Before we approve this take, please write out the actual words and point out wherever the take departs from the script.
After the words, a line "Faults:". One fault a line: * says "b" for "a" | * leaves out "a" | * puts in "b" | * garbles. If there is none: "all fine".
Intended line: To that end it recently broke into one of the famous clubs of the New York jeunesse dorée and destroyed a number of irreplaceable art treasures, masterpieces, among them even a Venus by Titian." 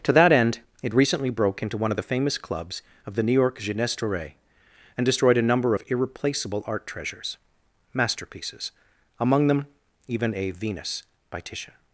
To that end it recently broke into one of the famous clubs of the New York jeunesse dorée and destroyed a number of irreplaceable art treasures, masterpieces, among them even a Venus by Titian."
Faults:
all fine